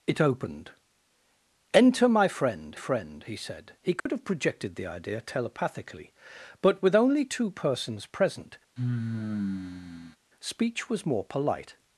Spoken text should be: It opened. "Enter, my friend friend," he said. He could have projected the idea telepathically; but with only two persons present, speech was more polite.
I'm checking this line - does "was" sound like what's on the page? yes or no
yes